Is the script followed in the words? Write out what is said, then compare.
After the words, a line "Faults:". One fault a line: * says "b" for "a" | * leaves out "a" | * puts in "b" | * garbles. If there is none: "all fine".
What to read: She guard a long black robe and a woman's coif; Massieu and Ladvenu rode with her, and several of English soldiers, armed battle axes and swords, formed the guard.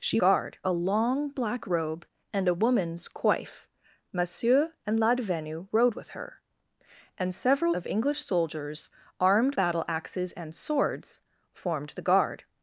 She guard a long black robe and a woman's coif; Massieu and Ladvenu rode with her, and several of English soldiers, armed battle axes and swords, formed the guard.
Faults:
all fine